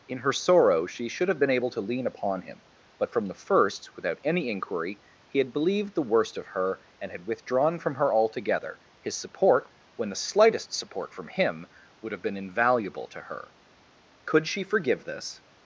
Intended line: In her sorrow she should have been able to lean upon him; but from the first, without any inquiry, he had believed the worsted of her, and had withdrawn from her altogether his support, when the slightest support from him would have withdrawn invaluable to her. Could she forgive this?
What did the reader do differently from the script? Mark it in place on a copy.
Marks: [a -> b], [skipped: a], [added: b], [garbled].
In her sorrow she should have been able to lean upon him; but from the first, without any inquiry, he had believed the [worsted -> worst] of her, and had withdrawn from her altogether his support, when the slightest support from him would have [withdrawn -> been] invaluable to her. Could she forgive this?